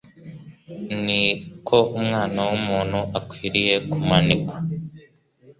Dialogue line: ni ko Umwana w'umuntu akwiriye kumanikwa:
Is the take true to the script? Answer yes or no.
yes